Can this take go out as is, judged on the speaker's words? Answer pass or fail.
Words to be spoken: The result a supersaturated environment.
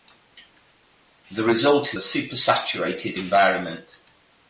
pass